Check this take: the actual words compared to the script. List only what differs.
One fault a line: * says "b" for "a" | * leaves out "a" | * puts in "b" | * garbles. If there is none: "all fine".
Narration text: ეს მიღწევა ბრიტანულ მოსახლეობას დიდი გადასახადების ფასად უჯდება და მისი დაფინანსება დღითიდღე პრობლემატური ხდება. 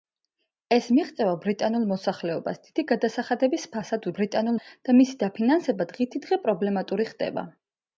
* says "ბრიტანულ" for "უჯდება"